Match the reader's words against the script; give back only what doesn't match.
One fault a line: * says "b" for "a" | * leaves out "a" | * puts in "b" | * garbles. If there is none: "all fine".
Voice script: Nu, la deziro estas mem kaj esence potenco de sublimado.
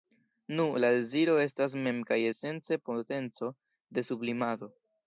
all fine